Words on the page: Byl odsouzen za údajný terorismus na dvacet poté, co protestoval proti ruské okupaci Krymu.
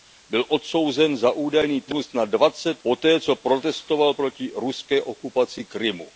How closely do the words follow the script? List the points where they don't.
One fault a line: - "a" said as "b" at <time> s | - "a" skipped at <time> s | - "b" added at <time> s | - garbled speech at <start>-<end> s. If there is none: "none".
none